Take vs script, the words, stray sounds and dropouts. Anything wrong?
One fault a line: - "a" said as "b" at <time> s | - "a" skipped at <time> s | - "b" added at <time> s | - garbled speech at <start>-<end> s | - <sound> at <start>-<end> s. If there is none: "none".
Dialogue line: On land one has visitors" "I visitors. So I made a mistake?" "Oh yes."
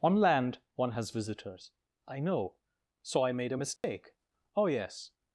- "visitors" said as "know" at 2.2 s
- dropout at 3.8-3.8 s